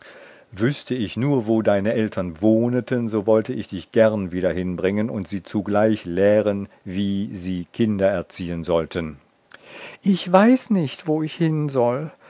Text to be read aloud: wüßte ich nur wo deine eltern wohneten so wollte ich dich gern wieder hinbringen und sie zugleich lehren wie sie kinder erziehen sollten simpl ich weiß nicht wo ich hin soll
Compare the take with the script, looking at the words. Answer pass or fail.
pass